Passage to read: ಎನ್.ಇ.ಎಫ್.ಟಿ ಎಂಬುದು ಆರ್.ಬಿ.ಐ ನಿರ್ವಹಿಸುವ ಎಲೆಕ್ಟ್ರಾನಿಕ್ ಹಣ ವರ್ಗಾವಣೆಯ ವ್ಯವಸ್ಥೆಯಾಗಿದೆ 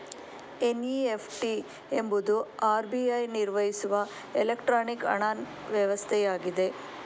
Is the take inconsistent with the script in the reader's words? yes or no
yes